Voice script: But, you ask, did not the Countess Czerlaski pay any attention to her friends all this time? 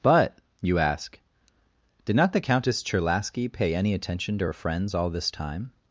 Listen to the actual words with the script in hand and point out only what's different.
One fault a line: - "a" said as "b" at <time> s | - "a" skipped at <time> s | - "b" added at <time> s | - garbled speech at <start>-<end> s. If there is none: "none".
none